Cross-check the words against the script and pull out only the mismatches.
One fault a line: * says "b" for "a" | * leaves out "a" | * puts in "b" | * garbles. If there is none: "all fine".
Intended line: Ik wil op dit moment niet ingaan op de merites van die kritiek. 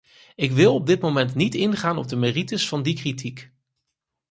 all fine